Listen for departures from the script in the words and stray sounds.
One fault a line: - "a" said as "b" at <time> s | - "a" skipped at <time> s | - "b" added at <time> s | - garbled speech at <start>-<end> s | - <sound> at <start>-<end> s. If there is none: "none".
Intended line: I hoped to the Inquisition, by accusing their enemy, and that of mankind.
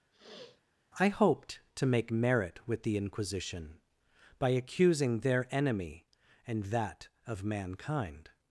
- sniff at 0.1-0.6 s
- "make merit with" added at 1.9 s